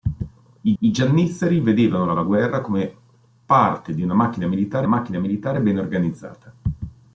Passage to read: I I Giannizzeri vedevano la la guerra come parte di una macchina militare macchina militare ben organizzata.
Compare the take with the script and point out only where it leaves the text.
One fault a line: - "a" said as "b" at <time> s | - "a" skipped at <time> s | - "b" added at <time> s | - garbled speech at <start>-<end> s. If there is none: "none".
none